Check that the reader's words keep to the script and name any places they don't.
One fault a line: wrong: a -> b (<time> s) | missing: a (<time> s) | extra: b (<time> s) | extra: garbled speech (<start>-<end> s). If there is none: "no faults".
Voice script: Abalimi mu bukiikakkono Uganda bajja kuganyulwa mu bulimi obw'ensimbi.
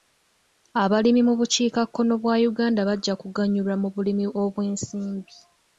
extra: bwa (2.2 s)